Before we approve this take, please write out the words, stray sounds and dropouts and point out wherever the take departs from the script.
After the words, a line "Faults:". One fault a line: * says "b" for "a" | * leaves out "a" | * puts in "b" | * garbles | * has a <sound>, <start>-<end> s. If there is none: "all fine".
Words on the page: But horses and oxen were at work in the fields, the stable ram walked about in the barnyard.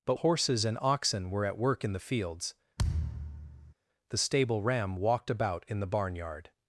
But horses and oxen were at work in the fields, the stable ram walked about in the barnyard.
Faults:
* has a thud, 2.8-3.7 s